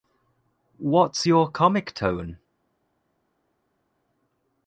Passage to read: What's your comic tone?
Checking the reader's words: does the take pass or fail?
pass